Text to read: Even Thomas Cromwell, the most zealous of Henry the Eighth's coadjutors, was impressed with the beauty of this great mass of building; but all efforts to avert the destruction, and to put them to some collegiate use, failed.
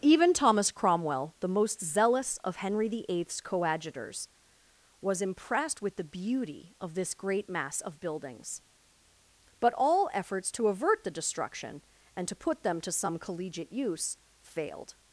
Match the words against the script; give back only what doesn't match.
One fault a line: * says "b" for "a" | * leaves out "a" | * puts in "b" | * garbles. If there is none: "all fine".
* says "buildings" for "building"